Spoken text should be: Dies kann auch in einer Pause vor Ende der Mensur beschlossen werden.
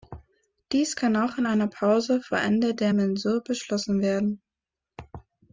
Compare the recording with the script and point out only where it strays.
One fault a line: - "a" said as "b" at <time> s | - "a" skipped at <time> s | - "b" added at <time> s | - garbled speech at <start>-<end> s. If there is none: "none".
none